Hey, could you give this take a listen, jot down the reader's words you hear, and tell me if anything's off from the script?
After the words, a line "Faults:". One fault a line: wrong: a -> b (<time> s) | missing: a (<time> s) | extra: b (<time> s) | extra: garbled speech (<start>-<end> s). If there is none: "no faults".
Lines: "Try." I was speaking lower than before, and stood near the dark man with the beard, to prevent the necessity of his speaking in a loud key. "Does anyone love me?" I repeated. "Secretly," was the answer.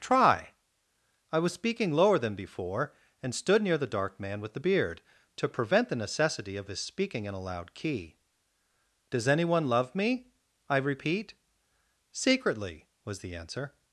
"Try." I was speaking lower than before, and stood near the dark man with the beard, to prevent the necessity of his speaking in a loud key. "Does anyone love me?" I repeat. "Secretly," was the answer.
Faults:
wrong: repeated -> repeat (10.8 s)